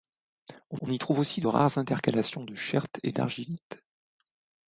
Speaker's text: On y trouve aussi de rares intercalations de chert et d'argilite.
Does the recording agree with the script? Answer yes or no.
no